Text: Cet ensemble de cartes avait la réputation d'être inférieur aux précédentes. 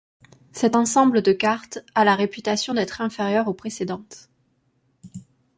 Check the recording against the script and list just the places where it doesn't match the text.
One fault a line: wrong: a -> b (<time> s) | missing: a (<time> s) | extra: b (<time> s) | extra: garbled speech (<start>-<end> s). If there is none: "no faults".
wrong: avait -> a (1.9 s)